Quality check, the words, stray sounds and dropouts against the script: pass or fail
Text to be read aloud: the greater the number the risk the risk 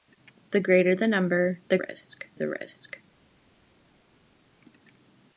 pass